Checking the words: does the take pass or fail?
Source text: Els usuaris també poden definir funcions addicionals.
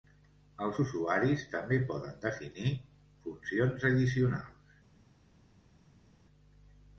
pass